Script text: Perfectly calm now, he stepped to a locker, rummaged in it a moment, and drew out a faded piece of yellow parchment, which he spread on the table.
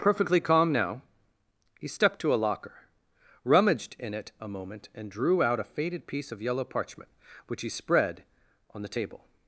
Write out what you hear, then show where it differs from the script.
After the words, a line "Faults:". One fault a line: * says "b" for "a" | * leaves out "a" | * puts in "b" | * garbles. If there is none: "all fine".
Perfectly calm now, he stepped to a locker, rummaged in it a moment, and drew out a faded piece of yellow parchment, which he spread on the table.
Faults:
all fine